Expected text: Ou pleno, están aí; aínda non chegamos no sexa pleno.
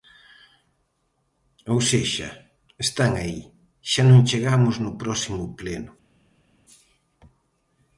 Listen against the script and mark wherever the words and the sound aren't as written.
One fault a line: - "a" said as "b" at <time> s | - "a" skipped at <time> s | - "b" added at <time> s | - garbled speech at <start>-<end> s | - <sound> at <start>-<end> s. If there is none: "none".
- "pleno" said as "sexa" at 1.9 s
- "aínda" said as "xa" at 3.9 s
- "sexa" said as "próximo" at 5.0 s